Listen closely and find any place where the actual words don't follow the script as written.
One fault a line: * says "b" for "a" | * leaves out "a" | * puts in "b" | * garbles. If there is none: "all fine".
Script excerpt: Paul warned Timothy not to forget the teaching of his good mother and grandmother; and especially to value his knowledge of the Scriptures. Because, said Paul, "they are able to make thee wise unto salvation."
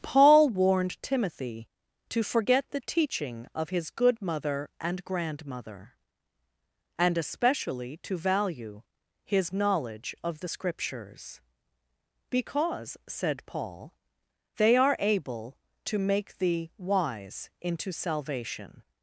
* leaves out "not"
* says "into" for "unto"